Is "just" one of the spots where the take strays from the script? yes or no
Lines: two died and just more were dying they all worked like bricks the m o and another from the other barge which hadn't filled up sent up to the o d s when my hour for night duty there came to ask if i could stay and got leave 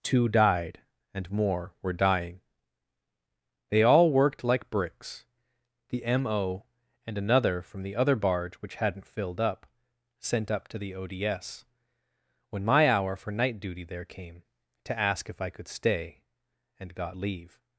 yes